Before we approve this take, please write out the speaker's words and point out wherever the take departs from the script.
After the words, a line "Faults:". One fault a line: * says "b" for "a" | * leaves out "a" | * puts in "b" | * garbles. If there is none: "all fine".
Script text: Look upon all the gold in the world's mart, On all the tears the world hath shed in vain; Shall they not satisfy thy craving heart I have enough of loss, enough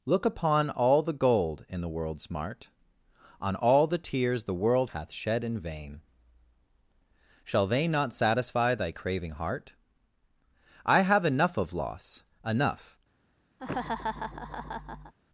Look upon all the gold in the world's mart, On all the tears the world hath shed in vain; Shall they not satisfy thy craving heart I have enough of loss, enough
Faults:
all fine